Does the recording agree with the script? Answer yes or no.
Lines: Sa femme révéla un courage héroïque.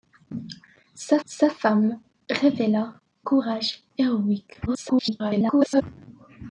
no